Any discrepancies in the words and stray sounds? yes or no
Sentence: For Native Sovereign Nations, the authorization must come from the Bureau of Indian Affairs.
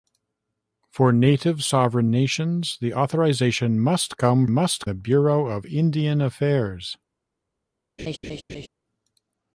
yes